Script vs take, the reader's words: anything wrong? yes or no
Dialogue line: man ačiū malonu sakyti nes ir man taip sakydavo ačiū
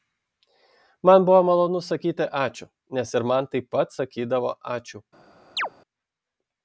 yes